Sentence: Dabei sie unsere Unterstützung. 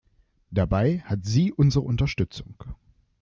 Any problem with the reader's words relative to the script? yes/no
yes